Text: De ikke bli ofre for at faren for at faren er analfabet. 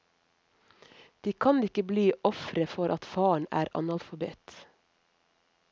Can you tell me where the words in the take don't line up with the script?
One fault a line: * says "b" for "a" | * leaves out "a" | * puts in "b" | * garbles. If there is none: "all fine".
* puts in "kan"
* leaves out "for at faren"